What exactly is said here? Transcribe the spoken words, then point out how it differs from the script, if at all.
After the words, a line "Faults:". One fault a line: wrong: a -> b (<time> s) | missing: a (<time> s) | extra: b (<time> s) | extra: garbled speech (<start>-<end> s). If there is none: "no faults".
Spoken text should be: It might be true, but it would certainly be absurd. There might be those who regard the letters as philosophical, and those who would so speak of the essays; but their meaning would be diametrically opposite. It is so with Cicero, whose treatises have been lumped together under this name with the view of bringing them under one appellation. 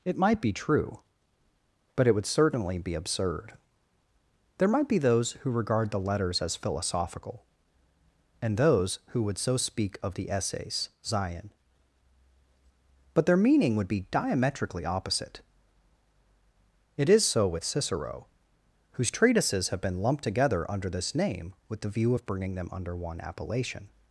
It might be true, but it would certainly be absurd. There might be those who regard the letters as philosophical, and those who would so speak of the essays; zion but their meaning would be diametrically opposite. It is so with Cicero, whose treatises have been lumped together under this name with the view of bringing them under one appellation.
Faults:
extra: zion (11.0 s)